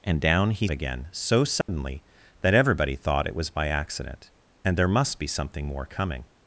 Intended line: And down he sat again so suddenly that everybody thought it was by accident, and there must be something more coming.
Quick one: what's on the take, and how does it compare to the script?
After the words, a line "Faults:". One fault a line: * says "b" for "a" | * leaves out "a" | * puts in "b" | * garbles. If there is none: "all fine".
And down he again so suddenly that everybody thought it was by accident, and there must be something more coming.
Faults:
* leaves out "sat"